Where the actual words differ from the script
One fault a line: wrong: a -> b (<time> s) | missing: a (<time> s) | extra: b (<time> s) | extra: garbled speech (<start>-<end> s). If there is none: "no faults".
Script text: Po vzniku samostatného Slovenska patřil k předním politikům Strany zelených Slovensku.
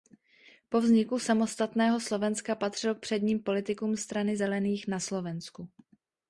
extra: na (4.9 s)